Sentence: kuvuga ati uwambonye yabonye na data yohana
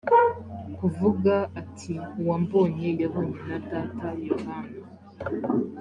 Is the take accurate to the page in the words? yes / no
yes